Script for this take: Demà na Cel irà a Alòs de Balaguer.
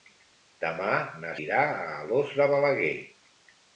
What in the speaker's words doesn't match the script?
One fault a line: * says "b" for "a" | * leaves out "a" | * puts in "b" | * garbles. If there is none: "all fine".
* leaves out "Cel"